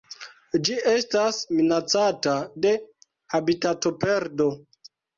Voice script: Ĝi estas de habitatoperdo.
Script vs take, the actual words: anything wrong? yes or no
yes